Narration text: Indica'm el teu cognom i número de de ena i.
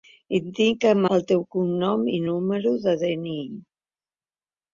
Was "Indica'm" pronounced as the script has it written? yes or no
yes